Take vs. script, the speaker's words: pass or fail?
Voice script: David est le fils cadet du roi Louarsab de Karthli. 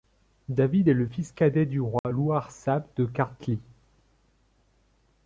pass